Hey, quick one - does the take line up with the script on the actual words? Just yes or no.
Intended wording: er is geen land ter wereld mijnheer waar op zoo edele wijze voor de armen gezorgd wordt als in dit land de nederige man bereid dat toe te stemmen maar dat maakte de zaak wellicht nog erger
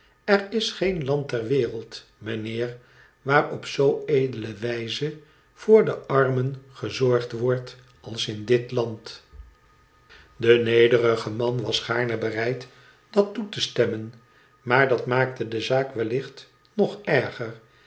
no